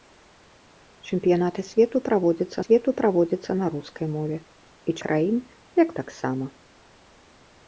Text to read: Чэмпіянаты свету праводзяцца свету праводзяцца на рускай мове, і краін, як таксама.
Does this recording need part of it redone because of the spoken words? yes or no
no